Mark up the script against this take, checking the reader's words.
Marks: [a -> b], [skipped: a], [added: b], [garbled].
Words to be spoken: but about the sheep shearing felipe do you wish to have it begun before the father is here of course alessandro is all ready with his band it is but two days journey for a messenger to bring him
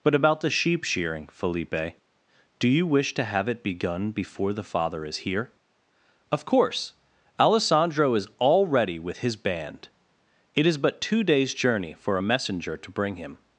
but about the sheep shearing felipe do you wish to have it begun before the father is here of course alessandro is all ready with his band it is but two days journey for a messenger to bring him